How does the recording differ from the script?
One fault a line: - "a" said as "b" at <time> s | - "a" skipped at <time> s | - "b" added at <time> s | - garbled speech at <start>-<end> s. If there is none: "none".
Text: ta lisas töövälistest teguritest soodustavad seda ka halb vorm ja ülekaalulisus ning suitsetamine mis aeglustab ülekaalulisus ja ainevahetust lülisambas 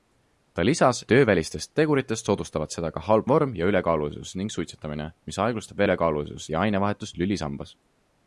none